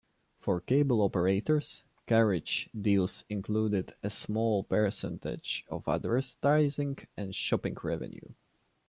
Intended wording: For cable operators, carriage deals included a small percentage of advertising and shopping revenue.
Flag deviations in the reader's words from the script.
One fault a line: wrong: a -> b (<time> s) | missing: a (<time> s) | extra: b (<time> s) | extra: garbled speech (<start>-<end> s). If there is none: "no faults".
no faults